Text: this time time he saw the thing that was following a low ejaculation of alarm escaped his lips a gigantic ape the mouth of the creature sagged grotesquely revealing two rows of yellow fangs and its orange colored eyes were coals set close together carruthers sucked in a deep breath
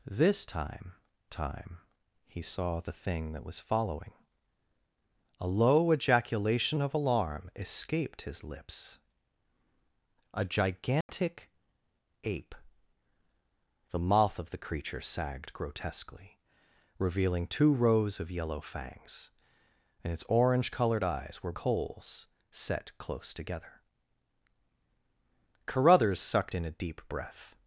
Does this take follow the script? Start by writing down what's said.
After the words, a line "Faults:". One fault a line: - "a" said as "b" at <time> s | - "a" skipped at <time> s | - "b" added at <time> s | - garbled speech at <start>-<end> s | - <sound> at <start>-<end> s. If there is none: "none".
this time time he saw the thing that was following a low ejaculation of alarm escaped his lips a gigantic ape the mouth of the creature sagged grotesquely revealing two rows of yellow fangs and its orange colored eyes were coals set close together carruthers sucked in a deep breath
Faults:
- dropout at 11.0-11.1 s